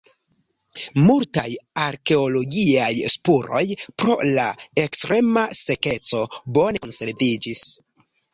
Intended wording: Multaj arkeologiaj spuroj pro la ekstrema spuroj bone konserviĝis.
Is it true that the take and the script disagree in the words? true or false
true